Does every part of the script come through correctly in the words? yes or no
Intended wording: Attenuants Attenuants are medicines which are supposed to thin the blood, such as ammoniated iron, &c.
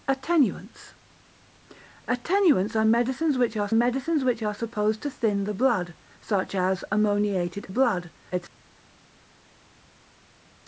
no